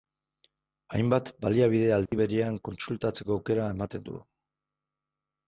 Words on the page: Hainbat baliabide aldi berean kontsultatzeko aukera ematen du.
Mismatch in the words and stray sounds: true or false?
true